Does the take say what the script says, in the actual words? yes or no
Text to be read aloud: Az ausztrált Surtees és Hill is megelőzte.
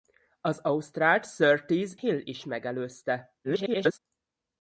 no